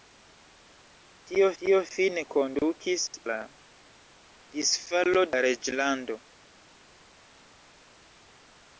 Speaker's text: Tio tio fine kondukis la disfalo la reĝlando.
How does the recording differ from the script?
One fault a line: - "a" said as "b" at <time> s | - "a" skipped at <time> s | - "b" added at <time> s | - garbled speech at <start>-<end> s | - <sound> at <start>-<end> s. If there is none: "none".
none